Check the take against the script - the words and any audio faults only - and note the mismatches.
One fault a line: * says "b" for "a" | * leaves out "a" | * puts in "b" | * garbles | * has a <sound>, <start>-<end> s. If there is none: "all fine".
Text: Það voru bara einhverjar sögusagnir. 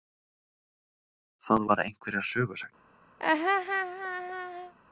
* leaves out "voru"
* has a laugh, 3.2-4.7 s